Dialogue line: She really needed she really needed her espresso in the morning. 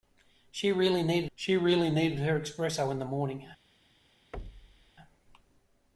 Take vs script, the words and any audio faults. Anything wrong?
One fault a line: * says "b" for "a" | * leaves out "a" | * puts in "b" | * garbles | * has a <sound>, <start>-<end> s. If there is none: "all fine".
* has a thud, 4.3-4.9 s